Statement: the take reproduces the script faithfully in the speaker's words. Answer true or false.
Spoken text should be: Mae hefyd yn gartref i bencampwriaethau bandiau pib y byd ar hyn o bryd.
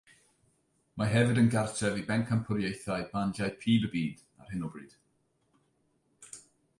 true